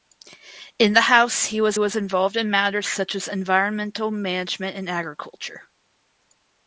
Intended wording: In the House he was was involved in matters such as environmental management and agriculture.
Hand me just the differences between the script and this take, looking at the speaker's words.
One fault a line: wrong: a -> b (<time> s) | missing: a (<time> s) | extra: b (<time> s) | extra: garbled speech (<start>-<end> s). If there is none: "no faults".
no faults